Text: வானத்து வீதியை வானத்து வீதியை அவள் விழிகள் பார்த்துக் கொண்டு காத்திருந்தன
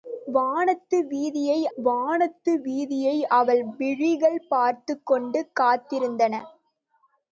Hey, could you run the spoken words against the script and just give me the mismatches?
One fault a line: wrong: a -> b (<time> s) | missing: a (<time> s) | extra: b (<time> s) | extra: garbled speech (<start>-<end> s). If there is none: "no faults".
no faults